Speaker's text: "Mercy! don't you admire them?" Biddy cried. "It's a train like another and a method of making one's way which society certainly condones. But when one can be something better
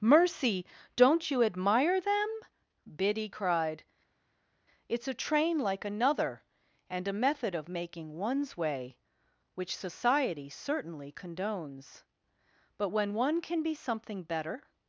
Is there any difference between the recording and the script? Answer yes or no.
no